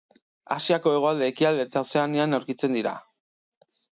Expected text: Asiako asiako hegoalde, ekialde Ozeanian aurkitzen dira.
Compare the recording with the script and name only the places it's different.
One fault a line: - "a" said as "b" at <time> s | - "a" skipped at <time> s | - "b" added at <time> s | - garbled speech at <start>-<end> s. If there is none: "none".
- "asiako" skipped at 0.9 s
- "eta" added at 1.7 s